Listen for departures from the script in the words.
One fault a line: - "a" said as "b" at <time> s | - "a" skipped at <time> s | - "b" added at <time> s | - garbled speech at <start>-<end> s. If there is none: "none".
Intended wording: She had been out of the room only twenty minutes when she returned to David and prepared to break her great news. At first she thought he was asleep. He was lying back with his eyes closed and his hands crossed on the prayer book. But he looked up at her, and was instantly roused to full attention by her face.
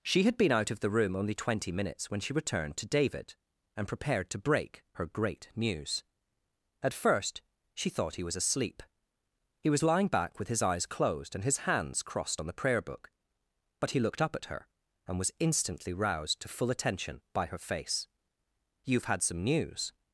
- "You've had some news" added at 18.8 s